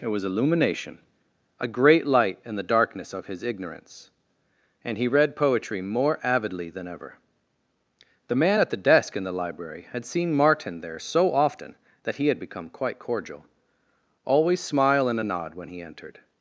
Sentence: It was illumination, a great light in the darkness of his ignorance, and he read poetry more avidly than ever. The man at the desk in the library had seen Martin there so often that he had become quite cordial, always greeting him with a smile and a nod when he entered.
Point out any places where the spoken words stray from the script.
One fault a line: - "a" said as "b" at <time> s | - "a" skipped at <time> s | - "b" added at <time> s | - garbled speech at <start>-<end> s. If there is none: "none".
- "greeting him with a" skipped at 14.6 s